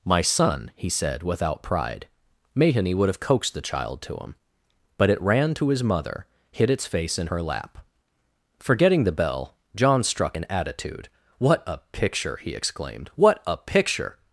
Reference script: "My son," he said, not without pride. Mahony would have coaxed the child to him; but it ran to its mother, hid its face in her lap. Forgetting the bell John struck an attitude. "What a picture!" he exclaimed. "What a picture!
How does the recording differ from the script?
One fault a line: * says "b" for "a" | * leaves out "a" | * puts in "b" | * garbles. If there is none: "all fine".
* leaves out "not"
* says "his" for "its"